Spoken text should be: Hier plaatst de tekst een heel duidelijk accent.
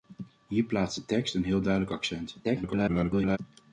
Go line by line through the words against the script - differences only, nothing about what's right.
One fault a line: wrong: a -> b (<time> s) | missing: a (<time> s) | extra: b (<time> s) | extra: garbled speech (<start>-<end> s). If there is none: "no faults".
extra: garbled speech (2.4-3.4 s)